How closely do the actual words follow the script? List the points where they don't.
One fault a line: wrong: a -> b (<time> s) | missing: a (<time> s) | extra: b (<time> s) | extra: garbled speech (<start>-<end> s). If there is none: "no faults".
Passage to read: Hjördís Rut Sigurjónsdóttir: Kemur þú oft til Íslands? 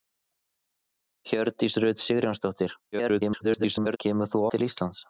extra: garbled speech (2.9-4.0 s)
missing: oft (4.4 s)